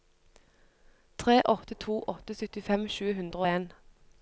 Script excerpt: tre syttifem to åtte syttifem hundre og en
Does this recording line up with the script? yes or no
no